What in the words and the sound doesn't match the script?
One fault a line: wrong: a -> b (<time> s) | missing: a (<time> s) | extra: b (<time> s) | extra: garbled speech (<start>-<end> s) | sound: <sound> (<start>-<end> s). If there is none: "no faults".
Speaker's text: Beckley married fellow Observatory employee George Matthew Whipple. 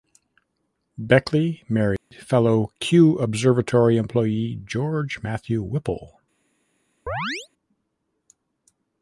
sound: dropout (2.0-2.1 s)
extra: Kew (2.8 s)
sound: chirp (7.1-7.5 s)